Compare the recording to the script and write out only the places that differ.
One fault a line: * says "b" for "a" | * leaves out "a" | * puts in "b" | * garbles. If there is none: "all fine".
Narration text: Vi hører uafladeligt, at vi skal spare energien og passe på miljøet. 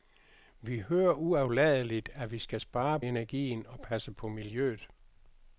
all fine